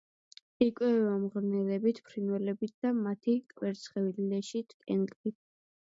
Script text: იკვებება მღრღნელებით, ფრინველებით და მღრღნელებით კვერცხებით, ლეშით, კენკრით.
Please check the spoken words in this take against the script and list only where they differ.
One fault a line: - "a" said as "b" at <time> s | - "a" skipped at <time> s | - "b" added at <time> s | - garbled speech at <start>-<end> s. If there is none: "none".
- "მღრღნელებით" said as "მათი" at 3.0 s